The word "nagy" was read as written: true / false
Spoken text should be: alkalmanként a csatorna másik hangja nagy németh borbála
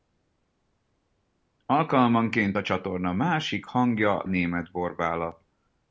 false